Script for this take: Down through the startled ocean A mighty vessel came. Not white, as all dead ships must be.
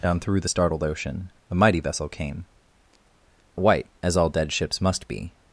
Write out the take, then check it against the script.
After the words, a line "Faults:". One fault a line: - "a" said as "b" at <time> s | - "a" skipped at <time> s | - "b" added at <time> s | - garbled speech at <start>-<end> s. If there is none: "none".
Down through the startled ocean A mighty vessel came. White, as all dead ships must be.
Faults:
- "Not" skipped at 2.4 s